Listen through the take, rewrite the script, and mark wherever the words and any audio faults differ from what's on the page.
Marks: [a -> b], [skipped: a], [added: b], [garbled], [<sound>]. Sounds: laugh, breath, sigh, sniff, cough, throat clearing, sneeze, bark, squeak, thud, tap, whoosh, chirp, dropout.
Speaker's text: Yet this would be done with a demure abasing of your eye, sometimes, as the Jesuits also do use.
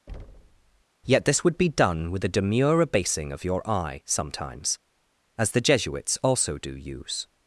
[thud] Yet this would be done with a demure abasing of your eye, sometimes, as the Jesuits also do use.